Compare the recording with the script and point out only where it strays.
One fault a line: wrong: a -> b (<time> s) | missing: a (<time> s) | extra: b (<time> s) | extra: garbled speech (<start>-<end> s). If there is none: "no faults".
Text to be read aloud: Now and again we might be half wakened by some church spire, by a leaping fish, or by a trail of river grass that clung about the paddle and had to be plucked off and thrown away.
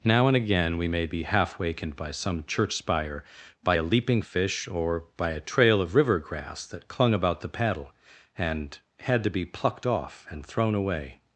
wrong: might -> may (0.9 s)